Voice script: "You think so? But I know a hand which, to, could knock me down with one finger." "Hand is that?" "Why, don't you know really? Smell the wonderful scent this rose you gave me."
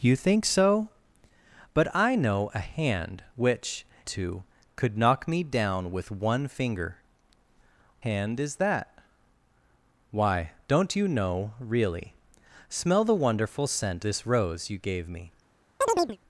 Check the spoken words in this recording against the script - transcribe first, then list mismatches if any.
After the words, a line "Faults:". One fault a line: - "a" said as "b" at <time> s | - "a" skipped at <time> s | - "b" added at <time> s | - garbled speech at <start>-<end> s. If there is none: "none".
"You think so? But I know a hand which, to, could knock me down with one finger." "Hand is that?" "Why, don't you know really? Smell the wonderful scent this rose you gave me."
Faults:
none